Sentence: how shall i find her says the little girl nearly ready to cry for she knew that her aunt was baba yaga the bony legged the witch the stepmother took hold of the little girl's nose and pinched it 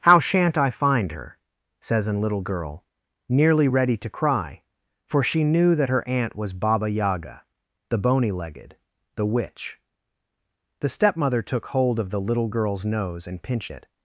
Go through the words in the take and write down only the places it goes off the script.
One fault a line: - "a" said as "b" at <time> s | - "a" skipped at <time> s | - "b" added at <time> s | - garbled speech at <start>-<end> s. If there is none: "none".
- "shall" said as "shan't" at 0.2 s
- "the" said as "an" at 2.1 s